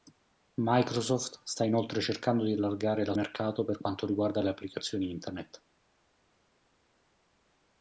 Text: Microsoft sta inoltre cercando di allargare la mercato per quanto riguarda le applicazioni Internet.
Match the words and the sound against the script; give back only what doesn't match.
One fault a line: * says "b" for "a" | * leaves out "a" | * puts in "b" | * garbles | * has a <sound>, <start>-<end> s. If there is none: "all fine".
all fine